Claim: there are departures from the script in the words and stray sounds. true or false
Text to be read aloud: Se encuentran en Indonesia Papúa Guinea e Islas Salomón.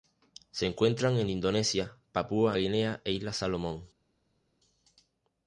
false